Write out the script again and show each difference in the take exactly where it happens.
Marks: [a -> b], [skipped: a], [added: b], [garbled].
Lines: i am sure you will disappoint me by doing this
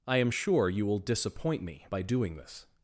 i am sure you will disappoint me by doing this